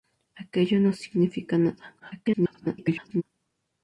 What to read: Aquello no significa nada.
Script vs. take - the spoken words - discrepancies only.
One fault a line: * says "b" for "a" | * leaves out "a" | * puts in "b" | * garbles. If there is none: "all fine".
* garbles